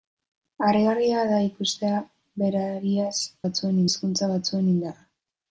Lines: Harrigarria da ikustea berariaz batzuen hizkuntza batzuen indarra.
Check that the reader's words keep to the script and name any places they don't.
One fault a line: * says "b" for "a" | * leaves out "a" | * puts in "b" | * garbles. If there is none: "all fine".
all fine